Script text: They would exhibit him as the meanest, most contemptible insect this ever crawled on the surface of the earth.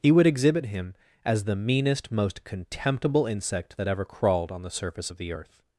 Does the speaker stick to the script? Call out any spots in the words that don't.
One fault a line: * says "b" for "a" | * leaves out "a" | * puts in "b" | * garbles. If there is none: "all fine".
* says "He" for "They"
* says "that" for "this"